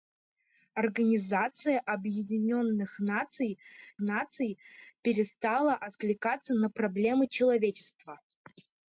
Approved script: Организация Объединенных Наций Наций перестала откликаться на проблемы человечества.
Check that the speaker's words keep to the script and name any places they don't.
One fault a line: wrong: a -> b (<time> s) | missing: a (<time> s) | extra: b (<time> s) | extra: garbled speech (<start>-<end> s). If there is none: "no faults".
no faults